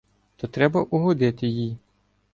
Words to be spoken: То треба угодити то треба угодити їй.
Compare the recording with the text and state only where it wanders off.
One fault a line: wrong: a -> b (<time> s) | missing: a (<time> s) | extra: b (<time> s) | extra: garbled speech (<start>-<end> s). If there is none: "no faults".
missing: то треба угодити (1.5 s)